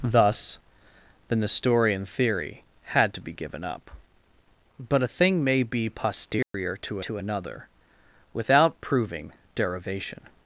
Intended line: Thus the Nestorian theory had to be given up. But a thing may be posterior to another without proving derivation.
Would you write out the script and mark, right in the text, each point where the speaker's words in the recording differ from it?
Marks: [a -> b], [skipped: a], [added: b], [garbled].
Thus the Nestorian theory had to be given up. But a thing may be posterior to [added: to] another without proving derivation.